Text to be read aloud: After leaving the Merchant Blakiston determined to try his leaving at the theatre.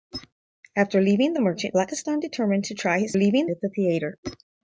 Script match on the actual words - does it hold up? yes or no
yes